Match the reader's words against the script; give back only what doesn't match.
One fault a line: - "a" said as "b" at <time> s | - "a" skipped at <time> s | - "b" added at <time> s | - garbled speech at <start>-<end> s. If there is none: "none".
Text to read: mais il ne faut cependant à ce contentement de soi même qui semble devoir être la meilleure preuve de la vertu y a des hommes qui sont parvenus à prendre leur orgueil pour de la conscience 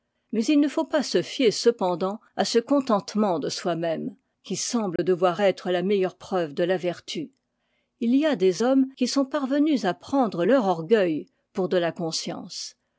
- "pas se fier" added at 0.8 s
- "il" added at 8.0 s